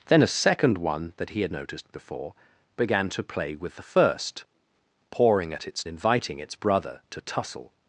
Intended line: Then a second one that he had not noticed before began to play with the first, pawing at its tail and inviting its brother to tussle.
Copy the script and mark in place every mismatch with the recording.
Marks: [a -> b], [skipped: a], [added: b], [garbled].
Then a second one that he had [skipped: not] noticed before began to play with the first, pawing at its [skipped: tail and] inviting its brother to tussle.